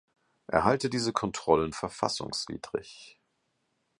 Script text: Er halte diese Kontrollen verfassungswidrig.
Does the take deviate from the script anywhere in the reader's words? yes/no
no